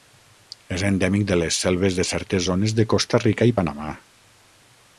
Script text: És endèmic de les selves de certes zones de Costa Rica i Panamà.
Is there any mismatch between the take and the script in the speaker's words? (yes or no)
no